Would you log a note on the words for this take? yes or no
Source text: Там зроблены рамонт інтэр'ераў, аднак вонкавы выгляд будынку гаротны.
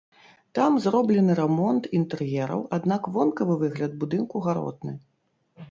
no